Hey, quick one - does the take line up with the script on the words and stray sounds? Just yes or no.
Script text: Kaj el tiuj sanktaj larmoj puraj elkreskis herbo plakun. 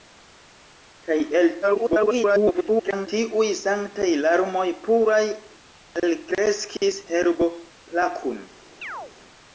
no